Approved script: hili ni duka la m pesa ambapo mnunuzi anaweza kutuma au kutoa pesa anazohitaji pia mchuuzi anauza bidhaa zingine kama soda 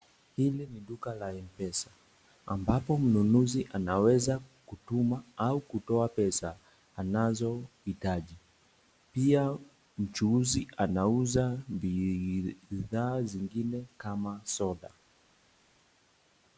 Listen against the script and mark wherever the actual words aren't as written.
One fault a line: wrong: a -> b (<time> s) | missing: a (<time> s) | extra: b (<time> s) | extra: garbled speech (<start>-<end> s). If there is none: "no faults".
no faults